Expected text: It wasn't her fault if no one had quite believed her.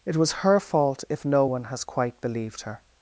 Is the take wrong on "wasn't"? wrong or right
wrong